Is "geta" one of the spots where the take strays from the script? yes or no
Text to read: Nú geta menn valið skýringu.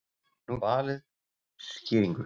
yes